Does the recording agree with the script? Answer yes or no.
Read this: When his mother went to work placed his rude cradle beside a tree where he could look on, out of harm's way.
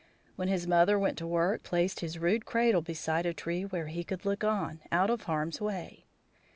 yes